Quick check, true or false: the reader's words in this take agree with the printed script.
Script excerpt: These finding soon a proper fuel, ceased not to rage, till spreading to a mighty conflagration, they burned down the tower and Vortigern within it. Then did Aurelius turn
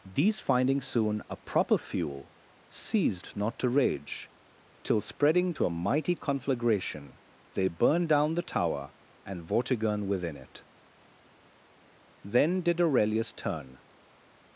true